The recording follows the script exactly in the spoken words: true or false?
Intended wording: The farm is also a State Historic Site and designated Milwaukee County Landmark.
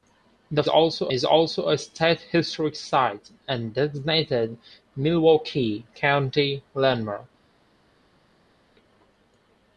false